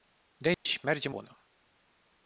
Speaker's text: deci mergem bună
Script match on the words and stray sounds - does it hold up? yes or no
no